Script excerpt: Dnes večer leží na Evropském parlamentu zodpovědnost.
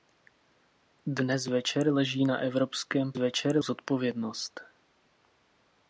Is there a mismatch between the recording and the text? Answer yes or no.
yes